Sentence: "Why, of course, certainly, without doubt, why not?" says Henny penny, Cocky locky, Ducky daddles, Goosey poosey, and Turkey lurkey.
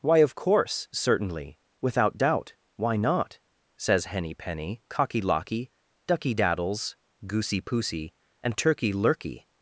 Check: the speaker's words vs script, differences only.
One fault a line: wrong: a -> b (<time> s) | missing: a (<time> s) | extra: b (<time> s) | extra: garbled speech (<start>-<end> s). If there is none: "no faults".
no faults